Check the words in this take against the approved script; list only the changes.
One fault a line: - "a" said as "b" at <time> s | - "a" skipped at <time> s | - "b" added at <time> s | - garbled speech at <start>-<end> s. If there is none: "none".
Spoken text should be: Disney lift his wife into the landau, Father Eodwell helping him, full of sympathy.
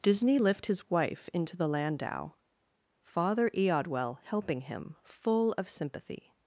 none